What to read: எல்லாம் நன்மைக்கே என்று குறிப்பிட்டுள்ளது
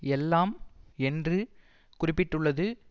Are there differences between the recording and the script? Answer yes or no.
yes